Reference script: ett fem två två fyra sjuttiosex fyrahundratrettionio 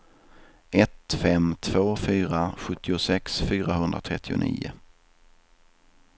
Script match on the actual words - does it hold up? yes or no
no